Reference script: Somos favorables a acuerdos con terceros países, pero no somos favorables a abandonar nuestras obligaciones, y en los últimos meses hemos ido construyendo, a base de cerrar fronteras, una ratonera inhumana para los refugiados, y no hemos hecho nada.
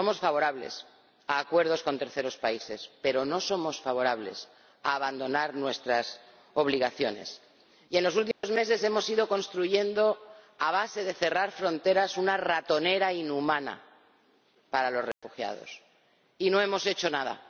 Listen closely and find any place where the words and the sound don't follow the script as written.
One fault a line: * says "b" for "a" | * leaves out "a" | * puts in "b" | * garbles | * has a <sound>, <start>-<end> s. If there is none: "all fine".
* has a dropout, 8.3-8.4 s
* has a dropout, 15.1-15.2 s